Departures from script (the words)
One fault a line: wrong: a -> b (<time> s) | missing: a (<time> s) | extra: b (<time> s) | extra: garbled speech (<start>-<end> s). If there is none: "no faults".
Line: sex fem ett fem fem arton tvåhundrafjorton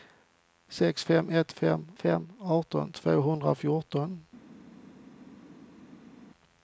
no faults